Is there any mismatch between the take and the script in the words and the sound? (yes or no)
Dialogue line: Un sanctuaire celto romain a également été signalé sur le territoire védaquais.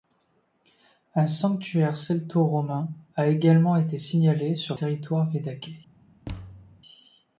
yes